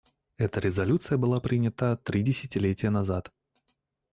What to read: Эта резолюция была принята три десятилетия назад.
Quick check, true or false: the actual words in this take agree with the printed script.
true